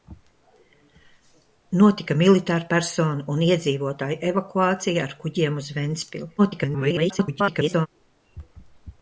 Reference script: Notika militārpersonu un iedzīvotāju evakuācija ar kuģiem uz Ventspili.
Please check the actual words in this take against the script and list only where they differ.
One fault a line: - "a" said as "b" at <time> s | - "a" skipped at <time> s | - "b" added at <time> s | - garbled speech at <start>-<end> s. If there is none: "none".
- garbled speech at 6.4-7.9 s